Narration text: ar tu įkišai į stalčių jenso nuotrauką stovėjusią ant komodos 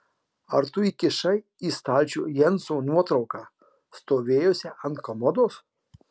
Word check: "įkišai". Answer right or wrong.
right